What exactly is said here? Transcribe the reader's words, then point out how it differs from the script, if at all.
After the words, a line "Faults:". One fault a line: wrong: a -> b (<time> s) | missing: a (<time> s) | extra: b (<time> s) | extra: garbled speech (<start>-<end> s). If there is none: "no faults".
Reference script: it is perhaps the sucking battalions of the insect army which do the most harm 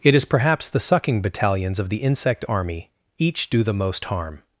it is perhaps the sucking battalions of the insect army each do the most harm
Faults:
wrong: which -> each (3.2 s)